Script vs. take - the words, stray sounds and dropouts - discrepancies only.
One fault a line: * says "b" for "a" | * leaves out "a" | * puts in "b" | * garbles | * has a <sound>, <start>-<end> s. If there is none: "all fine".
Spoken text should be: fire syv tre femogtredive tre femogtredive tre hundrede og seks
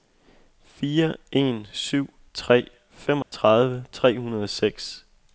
* puts in "en"
* has a dropout, 3.2-3.3 s
* leaves out "femogtredive tre"